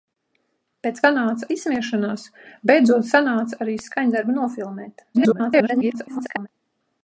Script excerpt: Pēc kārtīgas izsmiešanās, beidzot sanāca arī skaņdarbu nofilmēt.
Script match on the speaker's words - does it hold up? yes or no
no